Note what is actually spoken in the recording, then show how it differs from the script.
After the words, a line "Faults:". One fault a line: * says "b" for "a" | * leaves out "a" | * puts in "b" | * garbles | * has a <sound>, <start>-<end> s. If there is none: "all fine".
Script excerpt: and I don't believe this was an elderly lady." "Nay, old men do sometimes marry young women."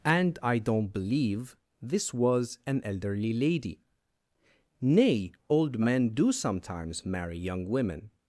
and I don't believe this was an elderly lady." "Nay, old men do sometimes marry young women."
Faults:
all fine